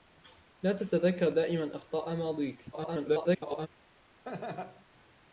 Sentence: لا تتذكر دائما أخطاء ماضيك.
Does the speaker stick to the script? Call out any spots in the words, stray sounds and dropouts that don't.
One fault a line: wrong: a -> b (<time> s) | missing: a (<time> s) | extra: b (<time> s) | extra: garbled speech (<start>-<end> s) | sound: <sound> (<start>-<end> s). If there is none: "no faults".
extra: garbled speech (2.7-3.7 s)
sound: laugh (4.3-4.9 s)